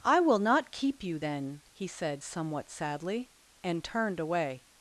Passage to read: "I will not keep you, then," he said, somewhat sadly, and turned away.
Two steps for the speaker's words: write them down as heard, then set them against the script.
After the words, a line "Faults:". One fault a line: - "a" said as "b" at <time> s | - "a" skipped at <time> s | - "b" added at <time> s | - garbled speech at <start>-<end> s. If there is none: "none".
"I will not keep you, then," he said, somewhat sadly, and turned away.
Faults:
none